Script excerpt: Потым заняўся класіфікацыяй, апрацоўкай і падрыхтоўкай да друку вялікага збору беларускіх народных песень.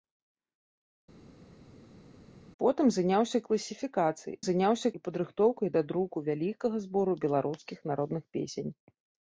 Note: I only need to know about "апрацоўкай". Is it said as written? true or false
false